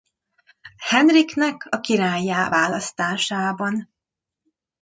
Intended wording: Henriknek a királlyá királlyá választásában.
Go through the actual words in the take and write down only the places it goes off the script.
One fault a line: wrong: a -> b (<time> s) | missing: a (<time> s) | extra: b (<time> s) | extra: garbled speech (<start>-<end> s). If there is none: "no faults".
missing: királlyá (2.5 s)